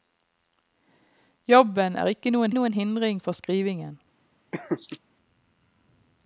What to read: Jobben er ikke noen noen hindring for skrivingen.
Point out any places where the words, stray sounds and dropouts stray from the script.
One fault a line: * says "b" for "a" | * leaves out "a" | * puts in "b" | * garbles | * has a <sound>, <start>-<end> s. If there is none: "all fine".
* has a laugh, 4.5-5.0 s